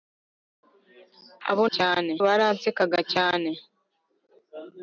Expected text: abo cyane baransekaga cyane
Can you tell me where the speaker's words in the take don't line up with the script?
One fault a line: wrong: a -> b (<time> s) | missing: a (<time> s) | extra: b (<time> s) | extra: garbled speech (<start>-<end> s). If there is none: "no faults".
no faults